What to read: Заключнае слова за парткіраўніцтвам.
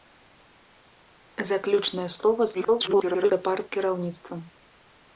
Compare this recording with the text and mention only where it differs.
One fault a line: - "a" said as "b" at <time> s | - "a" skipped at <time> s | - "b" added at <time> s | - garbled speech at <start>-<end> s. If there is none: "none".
- garbled speech at 2.5-3.3 s